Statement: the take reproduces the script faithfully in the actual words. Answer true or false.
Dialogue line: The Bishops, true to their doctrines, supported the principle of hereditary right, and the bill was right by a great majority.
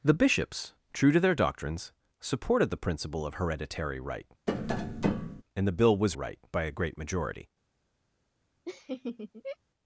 true